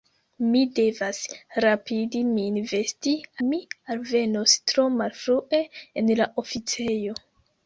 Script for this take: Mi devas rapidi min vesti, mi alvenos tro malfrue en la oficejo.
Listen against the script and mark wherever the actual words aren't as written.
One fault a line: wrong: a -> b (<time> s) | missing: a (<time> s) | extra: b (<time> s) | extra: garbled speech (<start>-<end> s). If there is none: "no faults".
no faults